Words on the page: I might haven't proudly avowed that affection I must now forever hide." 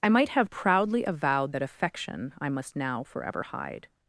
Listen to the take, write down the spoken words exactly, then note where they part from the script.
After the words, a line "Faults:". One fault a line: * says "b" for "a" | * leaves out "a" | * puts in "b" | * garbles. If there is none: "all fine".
I might have proudly avowed that affection I must now forever hide."
Faults:
* says "have" for "haven't"